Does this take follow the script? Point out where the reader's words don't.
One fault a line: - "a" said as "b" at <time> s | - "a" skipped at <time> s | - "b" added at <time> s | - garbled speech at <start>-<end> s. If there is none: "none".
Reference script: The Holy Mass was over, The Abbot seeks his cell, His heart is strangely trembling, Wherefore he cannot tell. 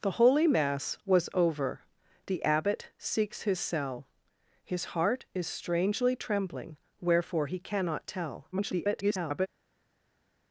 - garbled speech at 8.5-9.5 s